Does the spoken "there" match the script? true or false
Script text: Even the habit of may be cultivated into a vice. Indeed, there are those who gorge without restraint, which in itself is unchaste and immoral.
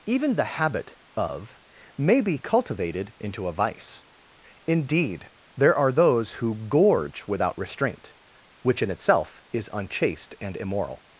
true